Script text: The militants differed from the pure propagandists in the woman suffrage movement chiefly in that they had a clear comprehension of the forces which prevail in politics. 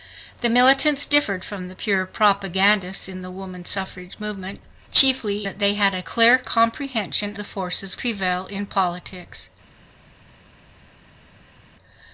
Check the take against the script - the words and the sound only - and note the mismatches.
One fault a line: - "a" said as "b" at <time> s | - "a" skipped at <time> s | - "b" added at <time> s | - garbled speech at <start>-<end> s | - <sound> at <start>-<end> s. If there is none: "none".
- "in" skipped at 5.5 s
- "of" skipped at 7.4 s
- "which" skipped at 8.0 s